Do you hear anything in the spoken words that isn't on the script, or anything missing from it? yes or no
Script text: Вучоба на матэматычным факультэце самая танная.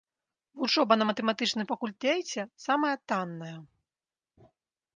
no